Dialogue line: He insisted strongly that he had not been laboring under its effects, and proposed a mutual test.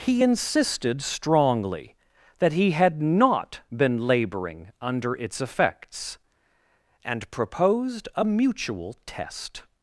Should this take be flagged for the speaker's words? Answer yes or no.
no